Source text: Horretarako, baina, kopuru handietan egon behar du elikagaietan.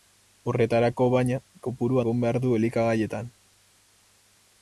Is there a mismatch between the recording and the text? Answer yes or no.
yes